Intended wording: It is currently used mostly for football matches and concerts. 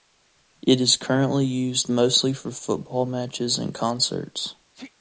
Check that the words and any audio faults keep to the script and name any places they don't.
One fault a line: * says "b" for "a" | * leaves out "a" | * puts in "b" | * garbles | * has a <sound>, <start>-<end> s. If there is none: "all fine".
* has a sneeze, 4.7-4.9 s